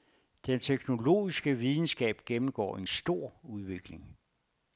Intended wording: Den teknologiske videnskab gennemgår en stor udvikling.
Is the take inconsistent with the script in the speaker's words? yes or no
no